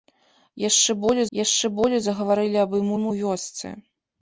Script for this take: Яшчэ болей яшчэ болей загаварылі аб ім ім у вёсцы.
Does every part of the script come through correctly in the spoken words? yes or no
yes